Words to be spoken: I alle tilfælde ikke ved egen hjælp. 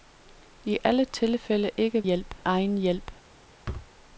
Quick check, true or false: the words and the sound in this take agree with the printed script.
false